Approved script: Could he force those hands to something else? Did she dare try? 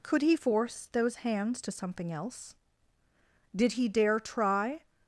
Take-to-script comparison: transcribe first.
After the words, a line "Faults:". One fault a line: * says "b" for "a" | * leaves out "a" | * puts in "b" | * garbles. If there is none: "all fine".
Could he force those hands to something else? Did he dare try?
Faults:
* says "he" for "she"